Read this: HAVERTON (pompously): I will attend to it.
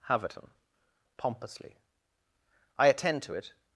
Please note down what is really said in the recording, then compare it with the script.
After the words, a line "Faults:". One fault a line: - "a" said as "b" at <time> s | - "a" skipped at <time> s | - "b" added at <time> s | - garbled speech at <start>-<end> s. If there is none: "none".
HAVERTON (pompously): I attend to it.
Faults:
- "will" skipped at 2.9 s